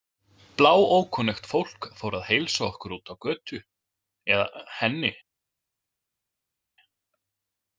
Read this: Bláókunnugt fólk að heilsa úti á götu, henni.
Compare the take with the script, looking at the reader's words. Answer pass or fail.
fail